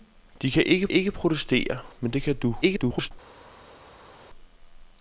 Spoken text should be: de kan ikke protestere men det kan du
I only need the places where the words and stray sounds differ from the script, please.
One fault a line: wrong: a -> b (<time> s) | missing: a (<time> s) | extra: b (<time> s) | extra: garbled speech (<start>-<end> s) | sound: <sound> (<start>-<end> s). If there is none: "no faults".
extra: ikke (0.9 s)
extra: garbled speech (2.6-3.1 s)